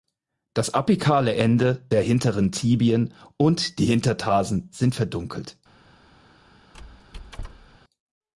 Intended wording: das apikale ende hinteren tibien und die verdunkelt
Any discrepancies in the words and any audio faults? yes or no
yes